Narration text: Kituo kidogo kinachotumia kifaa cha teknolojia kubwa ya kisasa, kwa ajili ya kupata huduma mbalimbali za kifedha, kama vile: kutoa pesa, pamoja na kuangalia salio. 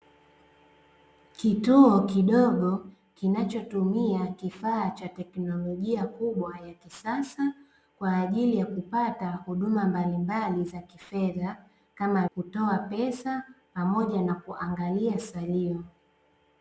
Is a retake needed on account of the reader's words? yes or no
yes